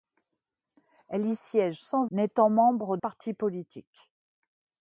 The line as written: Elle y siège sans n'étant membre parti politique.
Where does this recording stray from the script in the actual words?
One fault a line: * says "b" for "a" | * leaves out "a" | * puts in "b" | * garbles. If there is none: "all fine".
all fine